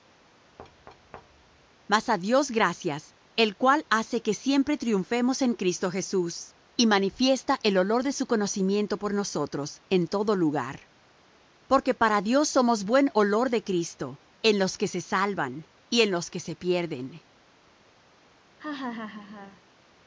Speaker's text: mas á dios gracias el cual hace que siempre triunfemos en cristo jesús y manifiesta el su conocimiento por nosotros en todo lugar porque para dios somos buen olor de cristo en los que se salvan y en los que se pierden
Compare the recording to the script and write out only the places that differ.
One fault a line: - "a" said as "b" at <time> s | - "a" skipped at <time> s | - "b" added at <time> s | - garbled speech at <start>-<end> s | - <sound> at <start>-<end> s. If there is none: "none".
- thud at 0.6-1.7 s
- "olor de" added at 7.8 s
- laugh at 18.6-19.6 s